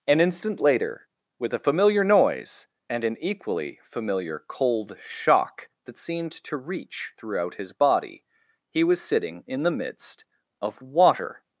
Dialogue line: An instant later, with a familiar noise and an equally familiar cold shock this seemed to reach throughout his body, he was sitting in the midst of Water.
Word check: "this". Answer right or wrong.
wrong